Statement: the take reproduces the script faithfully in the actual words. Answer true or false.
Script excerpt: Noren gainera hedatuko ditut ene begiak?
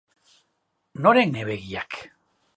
false